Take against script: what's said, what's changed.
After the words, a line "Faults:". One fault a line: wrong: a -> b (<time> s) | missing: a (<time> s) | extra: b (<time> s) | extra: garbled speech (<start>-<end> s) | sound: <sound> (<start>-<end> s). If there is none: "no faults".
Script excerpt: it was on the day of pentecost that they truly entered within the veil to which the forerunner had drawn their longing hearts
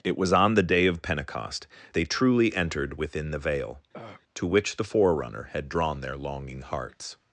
it was on the day of pentecost they truly entered within the veil to which the forerunner had drawn their longing hearts
Faults:
missing: that (1.7 s)
sound: throat clearing (3.9-4.2 s)